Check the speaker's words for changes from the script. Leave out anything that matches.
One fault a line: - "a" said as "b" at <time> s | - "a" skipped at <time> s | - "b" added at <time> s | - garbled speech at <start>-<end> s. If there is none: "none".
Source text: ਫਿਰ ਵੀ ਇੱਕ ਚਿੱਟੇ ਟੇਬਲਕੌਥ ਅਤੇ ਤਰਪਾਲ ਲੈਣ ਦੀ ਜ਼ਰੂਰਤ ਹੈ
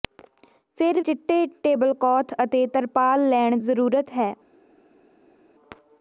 - "ਵੀ ਇੱਕ" skipped at 1.0 s
- "ਦੀ" skipped at 3.6 s